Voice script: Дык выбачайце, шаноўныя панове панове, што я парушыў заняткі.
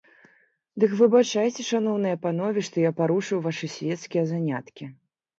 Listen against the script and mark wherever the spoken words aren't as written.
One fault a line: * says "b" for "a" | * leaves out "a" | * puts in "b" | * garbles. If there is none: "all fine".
* leaves out "панове"
* puts in "вашы свецкія"